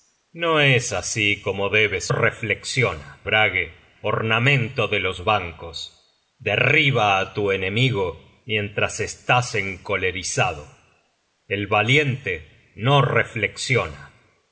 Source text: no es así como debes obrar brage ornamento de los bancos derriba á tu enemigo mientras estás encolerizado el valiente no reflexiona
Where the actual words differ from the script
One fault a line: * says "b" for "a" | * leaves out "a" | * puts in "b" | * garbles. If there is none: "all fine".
* says "reflexiona" for "obrar"